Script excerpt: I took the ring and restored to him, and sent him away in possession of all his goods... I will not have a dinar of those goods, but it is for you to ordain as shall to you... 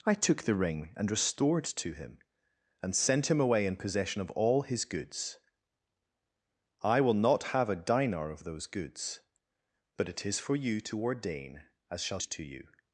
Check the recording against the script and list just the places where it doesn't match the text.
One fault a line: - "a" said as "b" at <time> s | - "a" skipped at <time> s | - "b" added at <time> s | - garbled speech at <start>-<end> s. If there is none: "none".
none